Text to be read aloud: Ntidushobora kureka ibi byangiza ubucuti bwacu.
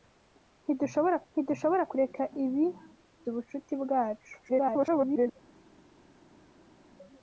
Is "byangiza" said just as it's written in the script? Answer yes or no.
no